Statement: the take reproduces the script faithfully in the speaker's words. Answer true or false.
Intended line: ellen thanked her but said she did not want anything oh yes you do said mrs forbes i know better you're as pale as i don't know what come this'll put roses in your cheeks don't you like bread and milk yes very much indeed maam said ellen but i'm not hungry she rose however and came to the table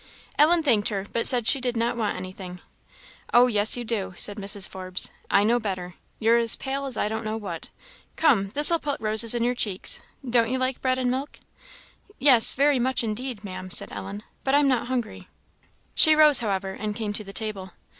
true